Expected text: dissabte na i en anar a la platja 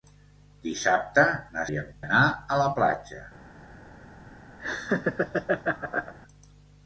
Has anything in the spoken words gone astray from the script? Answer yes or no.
no